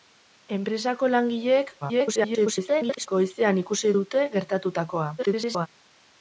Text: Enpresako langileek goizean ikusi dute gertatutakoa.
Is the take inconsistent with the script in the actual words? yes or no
yes